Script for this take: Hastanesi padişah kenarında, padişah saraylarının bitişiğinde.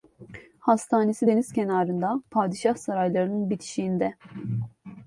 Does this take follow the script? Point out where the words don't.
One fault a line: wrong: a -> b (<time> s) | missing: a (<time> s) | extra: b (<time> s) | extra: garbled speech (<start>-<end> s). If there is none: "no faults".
wrong: padişah -> deniz (1.2 s)